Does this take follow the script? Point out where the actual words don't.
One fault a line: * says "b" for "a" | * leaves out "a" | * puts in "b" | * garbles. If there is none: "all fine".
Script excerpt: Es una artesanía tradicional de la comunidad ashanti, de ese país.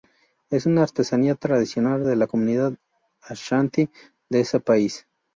all fine